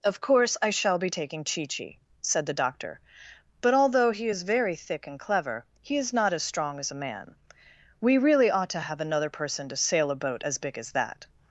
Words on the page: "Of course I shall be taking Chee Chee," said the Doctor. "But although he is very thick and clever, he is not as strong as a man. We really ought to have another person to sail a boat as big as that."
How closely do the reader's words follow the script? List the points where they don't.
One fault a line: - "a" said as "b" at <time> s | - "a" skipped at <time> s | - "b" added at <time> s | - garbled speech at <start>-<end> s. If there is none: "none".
none